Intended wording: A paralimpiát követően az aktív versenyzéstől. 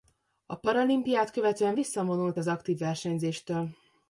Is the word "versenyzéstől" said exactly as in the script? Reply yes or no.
yes